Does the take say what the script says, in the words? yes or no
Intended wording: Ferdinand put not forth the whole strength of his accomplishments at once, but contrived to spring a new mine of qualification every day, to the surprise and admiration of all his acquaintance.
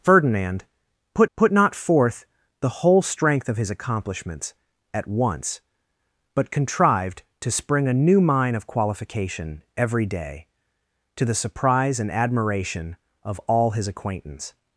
no